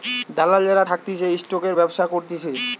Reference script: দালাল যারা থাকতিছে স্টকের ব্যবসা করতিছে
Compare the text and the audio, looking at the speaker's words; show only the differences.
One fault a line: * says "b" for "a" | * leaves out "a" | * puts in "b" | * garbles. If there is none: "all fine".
all fine